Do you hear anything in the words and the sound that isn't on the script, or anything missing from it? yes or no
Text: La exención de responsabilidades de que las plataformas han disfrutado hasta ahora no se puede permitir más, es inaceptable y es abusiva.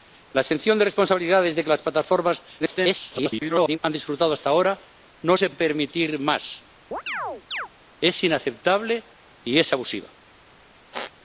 yes